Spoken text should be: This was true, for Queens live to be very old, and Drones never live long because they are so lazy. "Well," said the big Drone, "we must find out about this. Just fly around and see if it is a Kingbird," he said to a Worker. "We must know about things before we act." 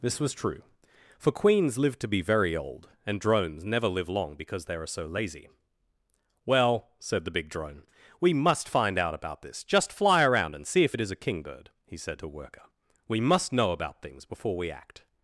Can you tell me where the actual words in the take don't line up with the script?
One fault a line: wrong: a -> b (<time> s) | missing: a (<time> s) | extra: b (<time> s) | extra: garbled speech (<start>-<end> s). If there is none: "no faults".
missing: a (12.3 s)